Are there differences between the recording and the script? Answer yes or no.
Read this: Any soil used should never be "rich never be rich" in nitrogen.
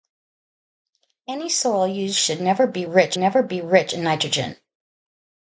no